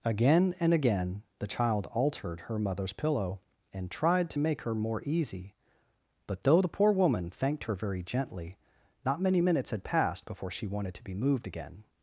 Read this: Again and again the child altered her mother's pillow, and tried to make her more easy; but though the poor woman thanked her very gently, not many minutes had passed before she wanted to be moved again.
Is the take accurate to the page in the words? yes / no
yes